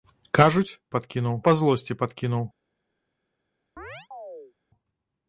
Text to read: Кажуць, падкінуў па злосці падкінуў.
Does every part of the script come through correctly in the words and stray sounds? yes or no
no